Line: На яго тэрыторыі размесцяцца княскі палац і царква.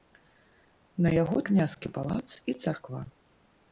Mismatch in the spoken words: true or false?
true